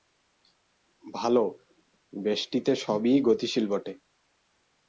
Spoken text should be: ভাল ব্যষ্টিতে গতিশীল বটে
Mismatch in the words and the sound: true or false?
true